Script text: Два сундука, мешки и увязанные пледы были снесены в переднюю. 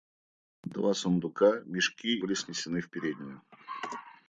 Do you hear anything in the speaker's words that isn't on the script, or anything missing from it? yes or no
yes